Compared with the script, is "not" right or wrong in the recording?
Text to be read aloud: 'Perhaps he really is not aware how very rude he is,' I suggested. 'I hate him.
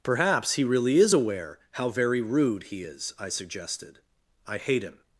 wrong